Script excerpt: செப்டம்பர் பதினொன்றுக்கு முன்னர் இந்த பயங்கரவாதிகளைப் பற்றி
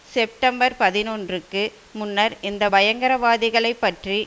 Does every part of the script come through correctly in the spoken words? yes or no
yes